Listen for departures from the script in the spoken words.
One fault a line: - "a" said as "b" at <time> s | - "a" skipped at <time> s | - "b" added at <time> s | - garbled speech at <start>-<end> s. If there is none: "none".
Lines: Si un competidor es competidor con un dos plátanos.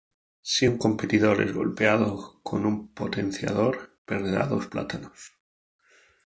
- "competidor" said as "golpeado" at 1.5 s
- "potenciador perderá" added at 2.9 s